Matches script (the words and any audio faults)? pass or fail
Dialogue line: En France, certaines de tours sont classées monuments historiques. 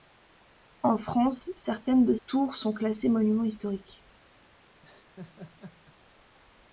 fail